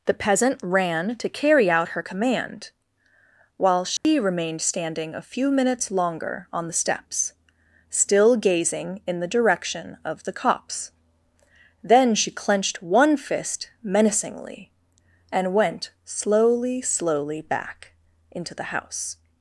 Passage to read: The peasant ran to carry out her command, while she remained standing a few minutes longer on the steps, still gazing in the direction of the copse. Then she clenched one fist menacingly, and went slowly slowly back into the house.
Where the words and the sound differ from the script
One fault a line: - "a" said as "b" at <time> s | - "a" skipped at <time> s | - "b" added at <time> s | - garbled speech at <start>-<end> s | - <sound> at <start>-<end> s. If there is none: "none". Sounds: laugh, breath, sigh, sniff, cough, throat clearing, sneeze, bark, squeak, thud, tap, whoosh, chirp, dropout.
- dropout at 4.0-4.0 s